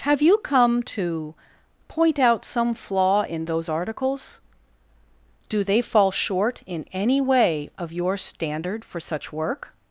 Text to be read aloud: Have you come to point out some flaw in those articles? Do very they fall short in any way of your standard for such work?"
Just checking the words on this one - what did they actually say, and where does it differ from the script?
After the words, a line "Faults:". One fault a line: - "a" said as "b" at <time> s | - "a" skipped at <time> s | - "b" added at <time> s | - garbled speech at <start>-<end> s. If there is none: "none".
Have you come to point out some flaw in those articles? Do they fall short in any way of your standard for such work?"
Faults:
- "very" skipped at 5.6 s